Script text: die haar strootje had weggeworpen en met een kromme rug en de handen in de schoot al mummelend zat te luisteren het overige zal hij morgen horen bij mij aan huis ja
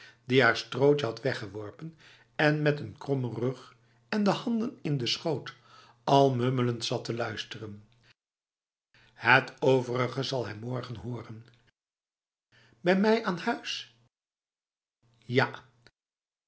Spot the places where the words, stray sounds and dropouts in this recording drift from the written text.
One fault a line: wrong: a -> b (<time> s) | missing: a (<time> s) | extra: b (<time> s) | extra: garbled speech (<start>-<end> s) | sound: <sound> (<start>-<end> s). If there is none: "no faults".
no faults